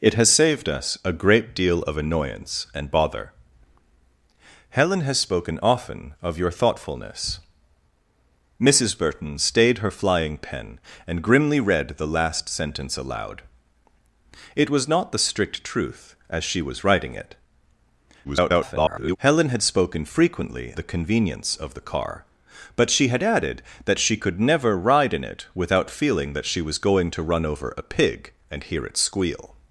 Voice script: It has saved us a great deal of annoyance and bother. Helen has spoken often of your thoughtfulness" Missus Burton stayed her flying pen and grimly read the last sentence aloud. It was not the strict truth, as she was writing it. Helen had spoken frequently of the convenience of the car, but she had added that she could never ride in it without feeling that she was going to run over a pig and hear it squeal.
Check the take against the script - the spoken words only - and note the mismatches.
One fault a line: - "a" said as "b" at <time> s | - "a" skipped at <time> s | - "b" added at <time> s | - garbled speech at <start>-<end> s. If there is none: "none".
- garbled speech at 18.2-19.2 s
- "of" skipped at 20.7 s